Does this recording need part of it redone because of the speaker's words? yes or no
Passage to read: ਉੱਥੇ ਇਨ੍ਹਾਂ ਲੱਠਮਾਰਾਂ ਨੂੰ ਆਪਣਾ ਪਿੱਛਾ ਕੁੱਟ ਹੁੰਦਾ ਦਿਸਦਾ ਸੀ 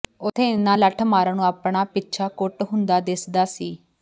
no